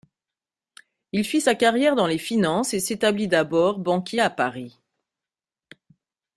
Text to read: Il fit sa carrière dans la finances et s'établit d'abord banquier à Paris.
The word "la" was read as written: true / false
false